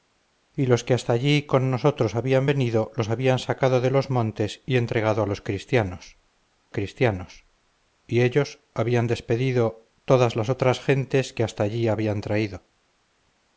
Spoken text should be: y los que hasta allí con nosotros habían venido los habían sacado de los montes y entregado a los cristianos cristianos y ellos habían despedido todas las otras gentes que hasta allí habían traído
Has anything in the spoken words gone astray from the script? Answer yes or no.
no